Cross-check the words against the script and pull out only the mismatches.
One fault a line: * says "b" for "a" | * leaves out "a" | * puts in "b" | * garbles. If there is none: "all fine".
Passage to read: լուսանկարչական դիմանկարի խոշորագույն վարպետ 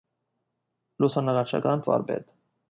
* leaves out "դիմանկարի խոշորագույն"